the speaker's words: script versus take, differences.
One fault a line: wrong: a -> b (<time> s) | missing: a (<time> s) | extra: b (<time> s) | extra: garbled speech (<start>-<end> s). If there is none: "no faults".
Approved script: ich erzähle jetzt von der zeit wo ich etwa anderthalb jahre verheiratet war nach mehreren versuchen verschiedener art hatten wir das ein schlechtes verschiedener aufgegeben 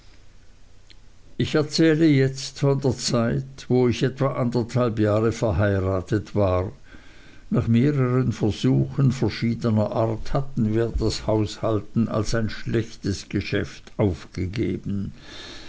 extra: haushalten als (11.3 s)
wrong: verschiedener -> geschäft (13.3 s)